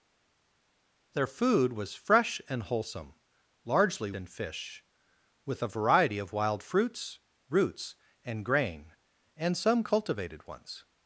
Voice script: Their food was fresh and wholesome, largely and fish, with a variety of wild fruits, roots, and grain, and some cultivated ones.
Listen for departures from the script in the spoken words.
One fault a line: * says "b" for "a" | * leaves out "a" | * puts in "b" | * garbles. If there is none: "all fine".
all fine